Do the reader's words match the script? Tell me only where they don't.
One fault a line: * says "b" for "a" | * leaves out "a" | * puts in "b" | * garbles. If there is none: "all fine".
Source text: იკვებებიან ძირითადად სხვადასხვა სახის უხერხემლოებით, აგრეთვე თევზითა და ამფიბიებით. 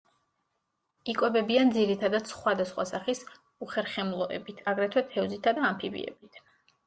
all fine